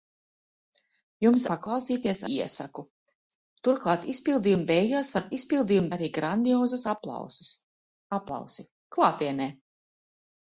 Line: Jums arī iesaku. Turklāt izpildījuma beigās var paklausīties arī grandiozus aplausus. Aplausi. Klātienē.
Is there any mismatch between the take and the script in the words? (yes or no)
yes